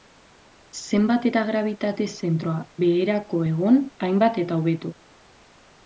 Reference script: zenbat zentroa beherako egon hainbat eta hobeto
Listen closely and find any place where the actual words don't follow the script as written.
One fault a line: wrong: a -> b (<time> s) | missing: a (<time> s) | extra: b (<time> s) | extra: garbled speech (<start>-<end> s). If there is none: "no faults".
extra: eta grabitate (1.3 s)